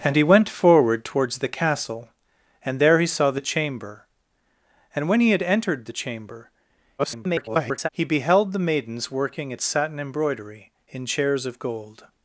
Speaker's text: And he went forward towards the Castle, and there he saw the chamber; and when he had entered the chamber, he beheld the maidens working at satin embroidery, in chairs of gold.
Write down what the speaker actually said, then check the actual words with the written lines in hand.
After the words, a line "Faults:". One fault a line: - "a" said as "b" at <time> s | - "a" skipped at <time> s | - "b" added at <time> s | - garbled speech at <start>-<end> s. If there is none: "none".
And he went forward towards the Castle, and there he saw the chamber; and when he had entered the chamber, [garbled] he beheld the maidens working at satin embroidery, in chairs of gold.
Faults:
- garbled speech at 7.0-7.9 s